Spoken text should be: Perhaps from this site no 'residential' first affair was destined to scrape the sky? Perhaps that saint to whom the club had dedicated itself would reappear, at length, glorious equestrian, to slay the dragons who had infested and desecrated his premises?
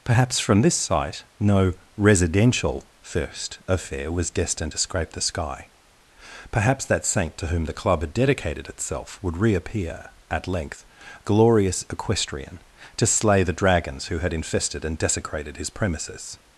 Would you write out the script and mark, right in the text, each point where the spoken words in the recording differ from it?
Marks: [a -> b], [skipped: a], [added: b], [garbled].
Perhaps from this site no 'residential' first affair was destined to scrape the sky? Perhaps that saint to whom the club had dedicated itself would reappear, at length, glorious equestrian, to slay the dragons who had infested and desecrated his premises?